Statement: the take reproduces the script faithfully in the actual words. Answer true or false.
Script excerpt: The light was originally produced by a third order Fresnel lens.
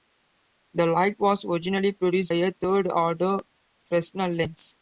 false